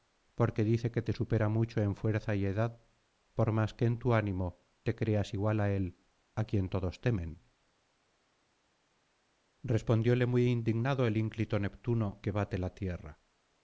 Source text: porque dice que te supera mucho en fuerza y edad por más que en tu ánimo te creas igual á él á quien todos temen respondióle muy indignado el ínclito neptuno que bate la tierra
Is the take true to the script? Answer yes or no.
yes